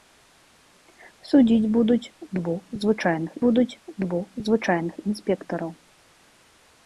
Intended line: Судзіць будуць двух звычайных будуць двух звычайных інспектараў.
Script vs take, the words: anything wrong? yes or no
no